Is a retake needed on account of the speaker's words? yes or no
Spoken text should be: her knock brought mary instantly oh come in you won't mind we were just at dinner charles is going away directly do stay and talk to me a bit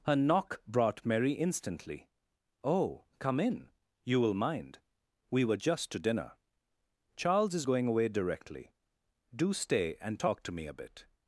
yes